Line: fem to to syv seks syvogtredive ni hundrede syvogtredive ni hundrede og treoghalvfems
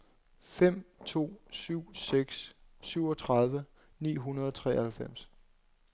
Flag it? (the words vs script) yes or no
yes